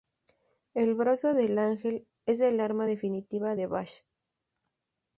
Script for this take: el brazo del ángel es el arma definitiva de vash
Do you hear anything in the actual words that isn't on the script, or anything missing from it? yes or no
no